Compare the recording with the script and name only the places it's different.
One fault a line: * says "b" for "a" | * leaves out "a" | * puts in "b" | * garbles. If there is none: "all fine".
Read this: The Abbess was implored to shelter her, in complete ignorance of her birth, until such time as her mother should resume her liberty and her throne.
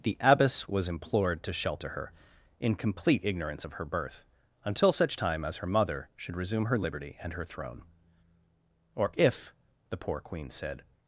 * puts in "Or if the poor Queen said"